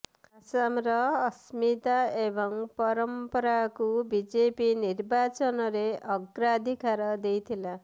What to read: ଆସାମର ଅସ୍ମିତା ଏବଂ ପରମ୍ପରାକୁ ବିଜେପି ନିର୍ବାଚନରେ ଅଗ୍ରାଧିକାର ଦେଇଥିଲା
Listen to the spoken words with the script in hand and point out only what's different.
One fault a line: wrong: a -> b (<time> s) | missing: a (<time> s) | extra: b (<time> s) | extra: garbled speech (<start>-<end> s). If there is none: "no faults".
no faults